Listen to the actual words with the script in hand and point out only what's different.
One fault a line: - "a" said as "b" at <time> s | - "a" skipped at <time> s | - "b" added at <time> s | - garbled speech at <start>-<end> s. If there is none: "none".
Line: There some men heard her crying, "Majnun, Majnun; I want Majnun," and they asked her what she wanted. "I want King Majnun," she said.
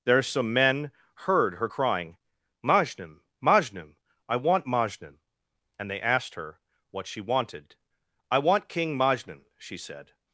none